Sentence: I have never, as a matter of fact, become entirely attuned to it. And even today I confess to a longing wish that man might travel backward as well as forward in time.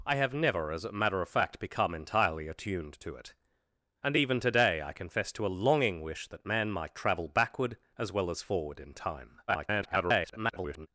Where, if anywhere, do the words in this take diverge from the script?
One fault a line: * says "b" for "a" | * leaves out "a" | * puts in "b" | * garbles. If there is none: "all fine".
* garbles